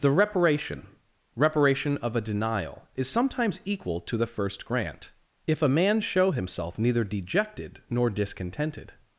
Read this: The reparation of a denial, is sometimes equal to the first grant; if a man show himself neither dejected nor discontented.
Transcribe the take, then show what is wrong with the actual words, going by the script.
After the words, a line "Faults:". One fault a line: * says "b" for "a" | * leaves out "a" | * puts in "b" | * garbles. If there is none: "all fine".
The reparation reparation of a denial, is sometimes equal to the first grant; if a man show himself neither dejected nor discontented.
Faults:
* puts in "reparation"